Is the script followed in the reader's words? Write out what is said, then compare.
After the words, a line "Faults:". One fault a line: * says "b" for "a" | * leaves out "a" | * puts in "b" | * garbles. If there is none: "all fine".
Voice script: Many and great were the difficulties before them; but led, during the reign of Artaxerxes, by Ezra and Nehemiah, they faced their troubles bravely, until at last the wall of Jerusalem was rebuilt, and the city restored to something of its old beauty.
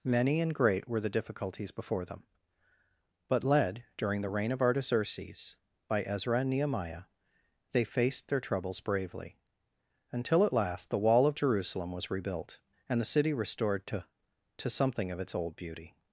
Many and great were the difficulties before them; but led, during the reign of Artaxerxes, by Ezra and Nehemiah, they faced their troubles bravely, until at last the wall of Jerusalem was rebuilt, and the city restored to to something of its old beauty.
Faults:
* puts in "to"